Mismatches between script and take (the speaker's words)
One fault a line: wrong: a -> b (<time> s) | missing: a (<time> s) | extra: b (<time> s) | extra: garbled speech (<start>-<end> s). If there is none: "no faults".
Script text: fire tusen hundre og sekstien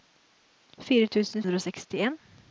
no faults